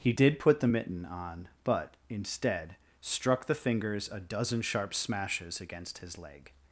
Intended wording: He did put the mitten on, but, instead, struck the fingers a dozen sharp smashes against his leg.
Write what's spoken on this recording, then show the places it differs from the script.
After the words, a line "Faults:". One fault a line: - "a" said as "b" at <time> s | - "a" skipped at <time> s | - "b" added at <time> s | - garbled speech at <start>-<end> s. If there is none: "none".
He did put the mitten on, but, instead, struck the fingers a dozen sharp smashes against his leg.
Faults:
none